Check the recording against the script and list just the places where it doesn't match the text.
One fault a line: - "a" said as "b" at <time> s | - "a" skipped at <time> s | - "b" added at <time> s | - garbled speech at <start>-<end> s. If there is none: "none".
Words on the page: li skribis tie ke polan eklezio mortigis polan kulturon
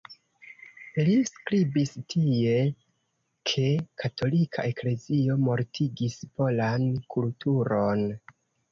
- "polan" said as "katolika" at 4.1 s